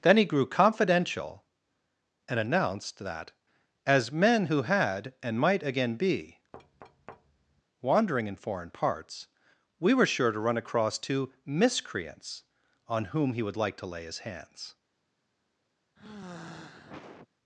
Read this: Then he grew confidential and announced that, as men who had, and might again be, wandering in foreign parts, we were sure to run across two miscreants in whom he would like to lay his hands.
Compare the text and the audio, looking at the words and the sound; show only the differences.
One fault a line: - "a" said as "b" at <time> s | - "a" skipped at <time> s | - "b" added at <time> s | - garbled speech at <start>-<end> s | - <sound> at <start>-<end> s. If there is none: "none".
- thud at 6.5-7.6 s
- "in" said as "on" at 12.9 s
- sigh at 16.0-17.3 s